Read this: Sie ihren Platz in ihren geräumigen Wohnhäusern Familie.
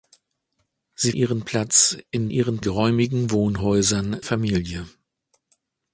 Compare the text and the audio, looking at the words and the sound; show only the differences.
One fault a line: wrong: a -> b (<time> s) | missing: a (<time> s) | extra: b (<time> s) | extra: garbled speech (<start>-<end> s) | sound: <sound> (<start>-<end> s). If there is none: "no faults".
no faults